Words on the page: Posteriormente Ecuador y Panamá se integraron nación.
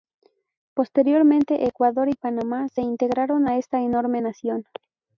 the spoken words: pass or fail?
fail